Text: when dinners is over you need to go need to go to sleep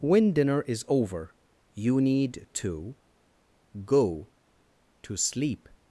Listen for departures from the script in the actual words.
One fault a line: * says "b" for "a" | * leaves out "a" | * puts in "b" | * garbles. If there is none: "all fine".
* says "dinner" for "dinners"
* leaves out "need to go"